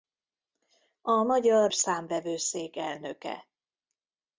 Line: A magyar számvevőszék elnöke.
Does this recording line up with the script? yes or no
yes